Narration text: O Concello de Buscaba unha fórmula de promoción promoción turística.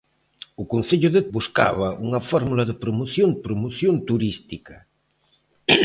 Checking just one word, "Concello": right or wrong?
right